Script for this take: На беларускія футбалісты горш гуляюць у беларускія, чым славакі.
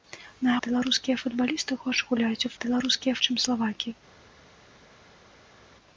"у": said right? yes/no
yes